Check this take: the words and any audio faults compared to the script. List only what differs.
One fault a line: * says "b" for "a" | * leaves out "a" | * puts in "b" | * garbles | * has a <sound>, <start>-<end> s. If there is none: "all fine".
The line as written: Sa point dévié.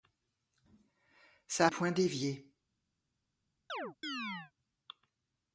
* has a chirp, 3.7-4.5 s